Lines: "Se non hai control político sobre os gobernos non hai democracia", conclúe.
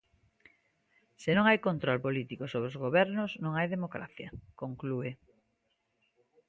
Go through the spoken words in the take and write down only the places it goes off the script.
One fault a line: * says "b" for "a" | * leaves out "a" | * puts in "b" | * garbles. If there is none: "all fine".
all fine